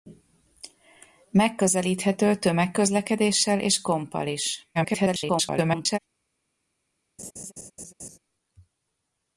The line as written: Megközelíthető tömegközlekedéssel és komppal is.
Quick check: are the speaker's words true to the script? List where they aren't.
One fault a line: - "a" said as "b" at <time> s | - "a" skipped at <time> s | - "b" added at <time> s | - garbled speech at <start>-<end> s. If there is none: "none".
- garbled speech at 4.7-6.0 s